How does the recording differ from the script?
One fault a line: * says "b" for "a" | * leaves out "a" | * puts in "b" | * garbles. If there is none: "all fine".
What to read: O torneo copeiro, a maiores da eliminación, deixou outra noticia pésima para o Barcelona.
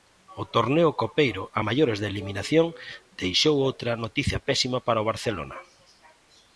all fine